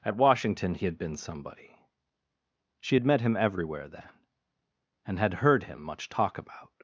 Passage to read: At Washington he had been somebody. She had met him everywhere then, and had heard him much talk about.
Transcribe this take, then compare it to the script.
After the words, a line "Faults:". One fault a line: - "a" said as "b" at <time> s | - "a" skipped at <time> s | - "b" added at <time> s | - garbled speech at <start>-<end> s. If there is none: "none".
At Washington he had been somebody. She had met him everywhere then, and had heard him much talk about.
Faults:
none